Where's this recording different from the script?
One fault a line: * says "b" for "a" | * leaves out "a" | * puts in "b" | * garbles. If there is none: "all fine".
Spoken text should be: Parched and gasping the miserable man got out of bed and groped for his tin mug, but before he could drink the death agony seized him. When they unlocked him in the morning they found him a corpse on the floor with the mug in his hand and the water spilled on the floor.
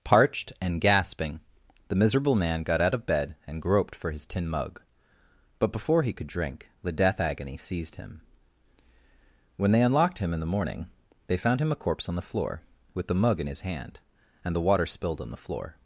all fine